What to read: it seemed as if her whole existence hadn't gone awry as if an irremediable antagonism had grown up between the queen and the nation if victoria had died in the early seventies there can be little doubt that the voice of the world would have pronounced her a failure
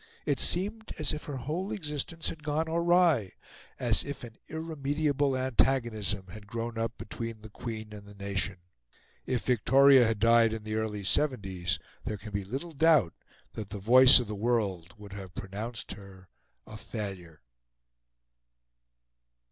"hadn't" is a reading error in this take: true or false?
true